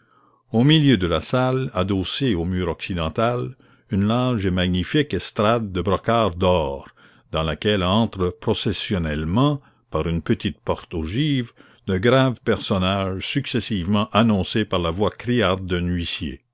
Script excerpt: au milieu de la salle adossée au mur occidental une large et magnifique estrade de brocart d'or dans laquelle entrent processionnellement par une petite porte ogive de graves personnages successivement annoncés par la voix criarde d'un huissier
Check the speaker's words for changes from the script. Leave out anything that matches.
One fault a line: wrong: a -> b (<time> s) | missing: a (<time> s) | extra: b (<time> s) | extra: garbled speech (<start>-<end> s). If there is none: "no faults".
no faults